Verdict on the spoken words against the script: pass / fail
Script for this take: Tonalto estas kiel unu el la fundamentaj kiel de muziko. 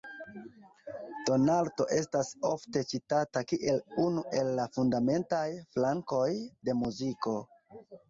fail